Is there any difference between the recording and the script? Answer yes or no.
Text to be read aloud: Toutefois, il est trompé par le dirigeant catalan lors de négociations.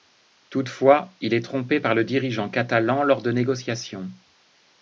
no